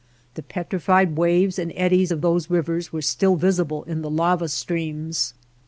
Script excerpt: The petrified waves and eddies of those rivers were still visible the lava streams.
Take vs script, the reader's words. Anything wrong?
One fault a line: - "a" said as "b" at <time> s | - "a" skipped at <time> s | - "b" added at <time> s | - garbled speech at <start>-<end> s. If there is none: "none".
- "in" added at 3.8 s